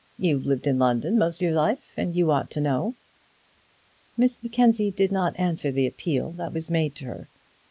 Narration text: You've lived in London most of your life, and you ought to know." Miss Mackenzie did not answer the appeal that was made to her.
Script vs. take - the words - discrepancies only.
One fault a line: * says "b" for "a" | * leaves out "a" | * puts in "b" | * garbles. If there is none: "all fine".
* leaves out "of"